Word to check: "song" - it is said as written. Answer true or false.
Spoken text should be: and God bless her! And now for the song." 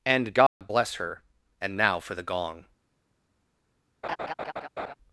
false